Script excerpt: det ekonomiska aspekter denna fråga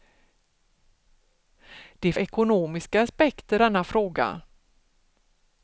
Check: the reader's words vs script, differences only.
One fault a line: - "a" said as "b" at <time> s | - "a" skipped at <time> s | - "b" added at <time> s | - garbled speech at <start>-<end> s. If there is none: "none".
none